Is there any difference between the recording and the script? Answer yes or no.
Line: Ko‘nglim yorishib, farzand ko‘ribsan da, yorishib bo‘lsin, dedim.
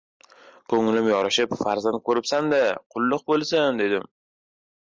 yes